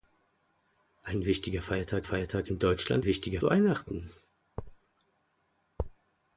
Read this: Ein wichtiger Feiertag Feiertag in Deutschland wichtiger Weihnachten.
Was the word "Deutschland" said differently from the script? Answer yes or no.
no